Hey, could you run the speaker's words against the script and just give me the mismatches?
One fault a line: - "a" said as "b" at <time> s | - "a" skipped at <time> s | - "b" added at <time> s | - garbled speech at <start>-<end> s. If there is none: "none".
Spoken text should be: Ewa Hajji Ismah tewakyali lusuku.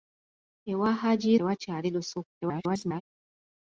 - "Ismah" skipped at 1.3 s
- garbled speech at 2.4-3.0 s